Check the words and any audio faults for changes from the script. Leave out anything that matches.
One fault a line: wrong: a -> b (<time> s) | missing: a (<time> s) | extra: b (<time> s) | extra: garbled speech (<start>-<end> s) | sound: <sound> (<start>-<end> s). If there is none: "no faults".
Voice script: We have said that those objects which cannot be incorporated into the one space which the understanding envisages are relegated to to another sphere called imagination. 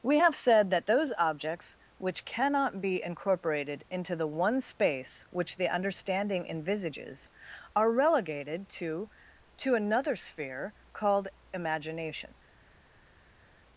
no faults